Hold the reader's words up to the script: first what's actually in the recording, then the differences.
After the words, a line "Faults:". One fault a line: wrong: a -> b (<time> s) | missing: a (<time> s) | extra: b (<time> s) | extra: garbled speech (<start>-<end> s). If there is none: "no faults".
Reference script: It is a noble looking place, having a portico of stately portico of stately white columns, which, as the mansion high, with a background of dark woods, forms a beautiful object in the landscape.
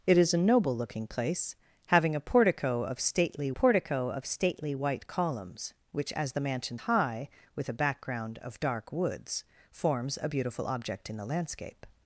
It is a noble looking place, having a portico of stately portico of stately white columns, which, as the mansion high, with a background of dark woods, forms a beautiful object in the landscape.
Faults:
no faults